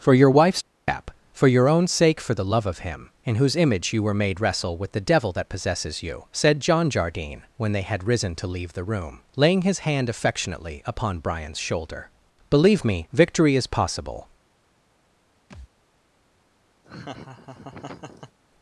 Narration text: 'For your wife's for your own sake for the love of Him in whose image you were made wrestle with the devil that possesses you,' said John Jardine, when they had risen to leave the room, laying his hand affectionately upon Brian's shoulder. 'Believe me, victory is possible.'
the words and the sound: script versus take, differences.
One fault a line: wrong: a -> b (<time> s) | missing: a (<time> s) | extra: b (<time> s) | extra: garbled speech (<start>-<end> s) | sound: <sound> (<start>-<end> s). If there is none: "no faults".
extra: cap (0.9 s)
sound: thud (15.5-15.7 s)
sound: laugh (16.8-18.4 s)